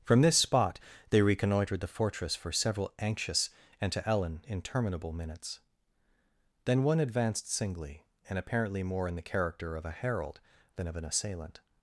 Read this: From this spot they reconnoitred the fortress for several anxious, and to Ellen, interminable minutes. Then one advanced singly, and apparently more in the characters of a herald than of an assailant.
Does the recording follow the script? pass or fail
fail